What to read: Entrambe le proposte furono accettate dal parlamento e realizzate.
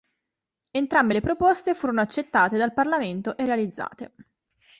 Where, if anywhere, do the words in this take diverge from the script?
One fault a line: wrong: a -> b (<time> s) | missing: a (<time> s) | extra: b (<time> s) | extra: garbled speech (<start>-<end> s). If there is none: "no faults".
no faults